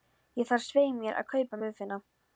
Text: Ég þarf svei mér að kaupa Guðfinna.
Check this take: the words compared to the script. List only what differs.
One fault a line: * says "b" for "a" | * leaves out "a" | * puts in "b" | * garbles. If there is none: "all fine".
all fine